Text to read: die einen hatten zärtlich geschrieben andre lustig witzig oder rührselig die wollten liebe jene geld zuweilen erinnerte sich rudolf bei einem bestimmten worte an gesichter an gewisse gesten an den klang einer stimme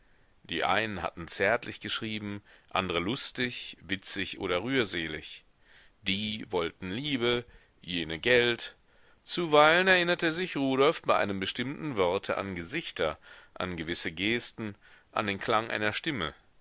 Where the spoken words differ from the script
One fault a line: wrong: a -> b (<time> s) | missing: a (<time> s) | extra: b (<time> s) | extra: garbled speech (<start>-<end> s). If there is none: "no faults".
no faults